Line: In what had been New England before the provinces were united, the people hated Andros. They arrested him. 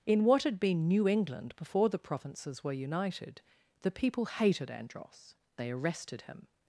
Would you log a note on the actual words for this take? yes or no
no